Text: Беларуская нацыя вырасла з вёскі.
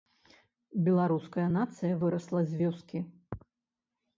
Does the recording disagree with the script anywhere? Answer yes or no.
no